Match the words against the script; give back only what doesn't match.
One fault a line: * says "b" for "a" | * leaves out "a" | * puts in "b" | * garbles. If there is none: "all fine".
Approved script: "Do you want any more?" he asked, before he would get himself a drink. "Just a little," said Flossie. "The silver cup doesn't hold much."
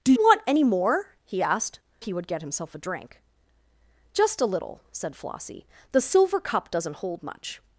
* leaves out "you"
* leaves out "before"